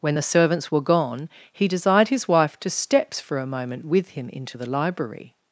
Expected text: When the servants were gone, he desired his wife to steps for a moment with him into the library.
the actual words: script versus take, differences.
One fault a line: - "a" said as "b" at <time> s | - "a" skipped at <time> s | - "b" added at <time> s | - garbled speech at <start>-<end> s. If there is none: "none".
none